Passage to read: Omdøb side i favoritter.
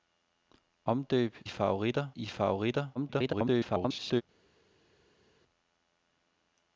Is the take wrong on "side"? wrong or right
wrong